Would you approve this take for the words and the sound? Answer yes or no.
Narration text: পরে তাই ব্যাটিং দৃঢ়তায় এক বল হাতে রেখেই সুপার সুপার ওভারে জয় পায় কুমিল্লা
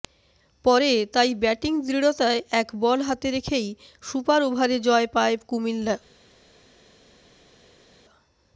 no